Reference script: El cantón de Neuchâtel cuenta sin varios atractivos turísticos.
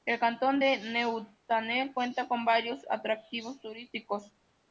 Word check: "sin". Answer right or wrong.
wrong